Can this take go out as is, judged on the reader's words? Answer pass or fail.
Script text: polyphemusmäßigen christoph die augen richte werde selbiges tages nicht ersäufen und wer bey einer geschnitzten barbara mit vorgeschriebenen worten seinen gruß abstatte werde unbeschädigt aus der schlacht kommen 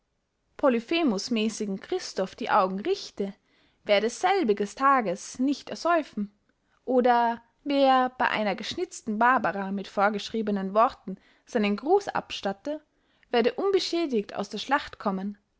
fail